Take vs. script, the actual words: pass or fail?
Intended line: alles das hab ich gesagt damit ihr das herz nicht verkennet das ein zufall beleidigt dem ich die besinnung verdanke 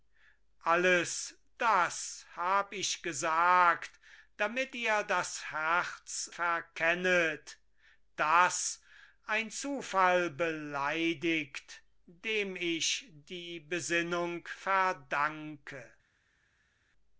fail